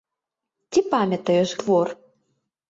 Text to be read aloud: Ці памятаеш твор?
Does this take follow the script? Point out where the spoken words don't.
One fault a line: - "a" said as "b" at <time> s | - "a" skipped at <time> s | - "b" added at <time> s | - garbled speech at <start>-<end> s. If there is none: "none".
none